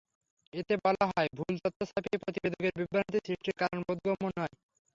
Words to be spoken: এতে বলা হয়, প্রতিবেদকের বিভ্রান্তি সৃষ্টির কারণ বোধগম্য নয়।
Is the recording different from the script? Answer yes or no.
yes